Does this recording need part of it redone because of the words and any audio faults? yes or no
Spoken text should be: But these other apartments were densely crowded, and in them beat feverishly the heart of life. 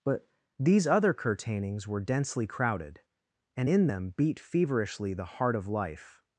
yes